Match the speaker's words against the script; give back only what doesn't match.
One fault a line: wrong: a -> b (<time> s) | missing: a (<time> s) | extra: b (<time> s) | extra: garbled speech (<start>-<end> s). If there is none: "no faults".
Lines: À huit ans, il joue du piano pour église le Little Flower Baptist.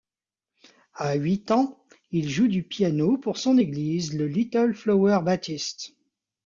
extra: son (3.4 s)